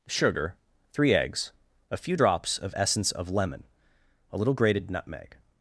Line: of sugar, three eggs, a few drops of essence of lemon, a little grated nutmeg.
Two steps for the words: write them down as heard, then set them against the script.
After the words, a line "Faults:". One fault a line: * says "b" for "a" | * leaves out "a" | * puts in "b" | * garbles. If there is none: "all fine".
sugar, three eggs, a few drops of essence of lemon, a little grated nutmeg.
Faults:
* leaves out "of"